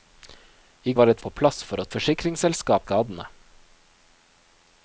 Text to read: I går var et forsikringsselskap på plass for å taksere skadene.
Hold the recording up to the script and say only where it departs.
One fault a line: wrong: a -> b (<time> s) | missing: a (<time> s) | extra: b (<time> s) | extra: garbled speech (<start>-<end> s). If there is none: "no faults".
missing: går (0.9 s)
missing: forsikringsselskap (1.2 s)
wrong: taksere -> forsikringsselskap (1.9 s)